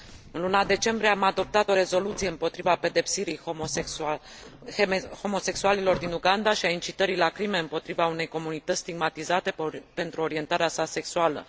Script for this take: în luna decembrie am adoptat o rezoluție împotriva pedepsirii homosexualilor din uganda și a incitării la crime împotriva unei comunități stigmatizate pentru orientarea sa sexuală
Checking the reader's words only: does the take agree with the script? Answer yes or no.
yes